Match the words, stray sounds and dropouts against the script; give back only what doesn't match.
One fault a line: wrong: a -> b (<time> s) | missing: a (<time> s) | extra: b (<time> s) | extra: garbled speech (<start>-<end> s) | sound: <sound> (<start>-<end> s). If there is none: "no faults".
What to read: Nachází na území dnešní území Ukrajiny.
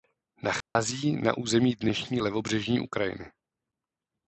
sound: dropout (0.6-0.8 s)
wrong: území -> levobřežní (2.2 s)